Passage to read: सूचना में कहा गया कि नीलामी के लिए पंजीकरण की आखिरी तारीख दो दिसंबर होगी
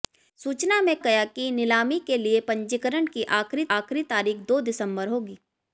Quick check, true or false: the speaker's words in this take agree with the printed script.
false